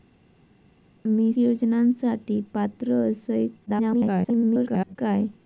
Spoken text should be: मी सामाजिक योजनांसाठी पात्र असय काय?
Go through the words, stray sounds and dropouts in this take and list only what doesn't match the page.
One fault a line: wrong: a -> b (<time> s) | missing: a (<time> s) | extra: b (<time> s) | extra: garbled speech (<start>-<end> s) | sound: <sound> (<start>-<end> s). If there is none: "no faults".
missing: सामाजिक (1.3 s)
extra: garbled speech (3.7-5.0 s)